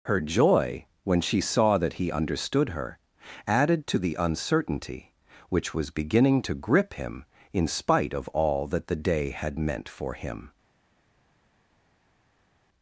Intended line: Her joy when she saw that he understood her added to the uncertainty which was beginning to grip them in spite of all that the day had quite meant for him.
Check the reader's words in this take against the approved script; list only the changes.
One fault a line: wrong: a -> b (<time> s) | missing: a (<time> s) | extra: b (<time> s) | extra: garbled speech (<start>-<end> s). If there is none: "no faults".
wrong: them -> him (7.0 s)
missing: quite (9.6 s)